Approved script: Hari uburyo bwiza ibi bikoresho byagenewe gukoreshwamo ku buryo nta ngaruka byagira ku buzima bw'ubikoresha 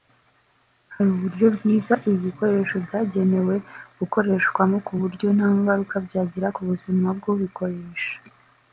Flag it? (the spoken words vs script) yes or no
no